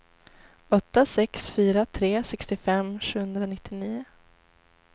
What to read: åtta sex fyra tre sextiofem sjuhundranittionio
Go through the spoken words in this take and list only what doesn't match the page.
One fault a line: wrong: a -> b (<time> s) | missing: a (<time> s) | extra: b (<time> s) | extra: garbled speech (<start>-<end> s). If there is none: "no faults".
no faults